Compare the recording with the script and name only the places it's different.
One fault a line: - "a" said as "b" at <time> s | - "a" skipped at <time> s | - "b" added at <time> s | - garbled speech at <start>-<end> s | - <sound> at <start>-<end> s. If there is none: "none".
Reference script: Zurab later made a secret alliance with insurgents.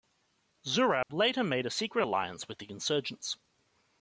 - dropout at 1.0-1.1 s
- "the" added at 2.6 s